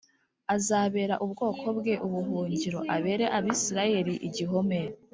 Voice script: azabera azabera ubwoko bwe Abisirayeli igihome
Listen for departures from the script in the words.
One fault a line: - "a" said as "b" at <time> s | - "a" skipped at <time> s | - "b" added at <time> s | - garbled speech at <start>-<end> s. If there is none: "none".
- "azabera" skipped at 1.1 s
- "ubuhungiro abere" added at 2.1 s